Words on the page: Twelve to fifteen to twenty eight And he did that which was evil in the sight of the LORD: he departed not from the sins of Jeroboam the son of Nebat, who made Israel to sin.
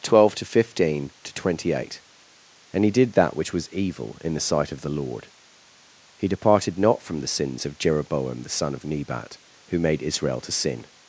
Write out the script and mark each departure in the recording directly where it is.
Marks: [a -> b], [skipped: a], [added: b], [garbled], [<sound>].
Twelve to fifteen to twenty eight And he did that which was evil in the sight of the LORD: he departed not from the sins of Jeroboam the son of Nebat, who made Israel to sin.